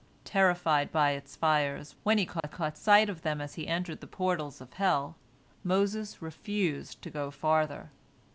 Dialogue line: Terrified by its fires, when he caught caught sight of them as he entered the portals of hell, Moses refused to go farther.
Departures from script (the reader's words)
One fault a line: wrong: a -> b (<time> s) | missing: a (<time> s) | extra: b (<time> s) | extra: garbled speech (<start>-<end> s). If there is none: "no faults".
no faults